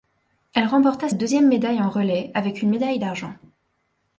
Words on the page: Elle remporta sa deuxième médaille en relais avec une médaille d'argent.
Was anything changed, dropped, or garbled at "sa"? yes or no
yes